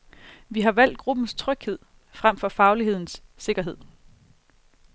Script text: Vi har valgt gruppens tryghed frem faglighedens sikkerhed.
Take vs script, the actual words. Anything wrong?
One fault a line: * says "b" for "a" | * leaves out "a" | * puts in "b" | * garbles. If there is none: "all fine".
* puts in "for"